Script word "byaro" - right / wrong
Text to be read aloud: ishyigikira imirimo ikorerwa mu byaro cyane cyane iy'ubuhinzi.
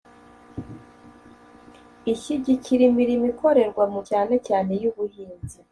wrong